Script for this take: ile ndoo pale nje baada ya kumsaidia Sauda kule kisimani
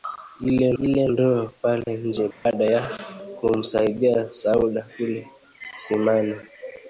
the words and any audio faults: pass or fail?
fail